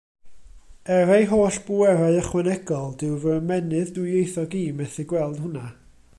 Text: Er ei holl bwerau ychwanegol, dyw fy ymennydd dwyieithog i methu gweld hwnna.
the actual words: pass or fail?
pass